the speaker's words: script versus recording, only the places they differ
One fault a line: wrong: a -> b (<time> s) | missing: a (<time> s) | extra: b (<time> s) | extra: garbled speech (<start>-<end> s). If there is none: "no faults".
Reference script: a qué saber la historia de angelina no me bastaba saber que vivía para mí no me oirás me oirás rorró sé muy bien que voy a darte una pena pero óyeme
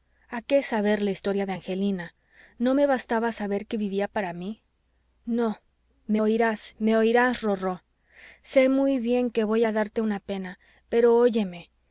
no faults